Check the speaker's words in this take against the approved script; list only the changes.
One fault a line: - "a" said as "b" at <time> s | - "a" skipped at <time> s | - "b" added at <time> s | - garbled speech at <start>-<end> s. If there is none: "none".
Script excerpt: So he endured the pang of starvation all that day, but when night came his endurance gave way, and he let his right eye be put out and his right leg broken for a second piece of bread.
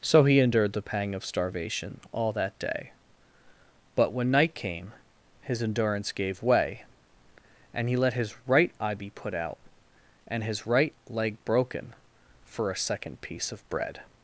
none